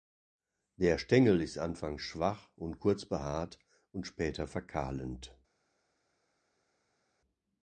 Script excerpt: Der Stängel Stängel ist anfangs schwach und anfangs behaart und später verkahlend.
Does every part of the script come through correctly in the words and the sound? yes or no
no